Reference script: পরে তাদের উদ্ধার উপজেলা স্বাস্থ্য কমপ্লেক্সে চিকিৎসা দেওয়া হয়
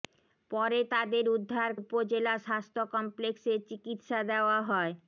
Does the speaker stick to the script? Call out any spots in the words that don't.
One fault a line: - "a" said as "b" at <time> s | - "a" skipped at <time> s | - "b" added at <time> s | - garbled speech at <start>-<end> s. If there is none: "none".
none